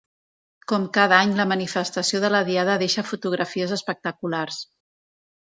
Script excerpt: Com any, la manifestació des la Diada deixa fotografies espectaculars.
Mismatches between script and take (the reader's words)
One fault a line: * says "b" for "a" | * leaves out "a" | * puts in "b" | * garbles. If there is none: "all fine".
* puts in "cada"
* says "de" for "des"